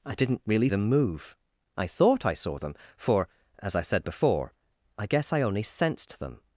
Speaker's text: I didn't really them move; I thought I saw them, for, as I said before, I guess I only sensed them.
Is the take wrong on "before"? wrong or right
right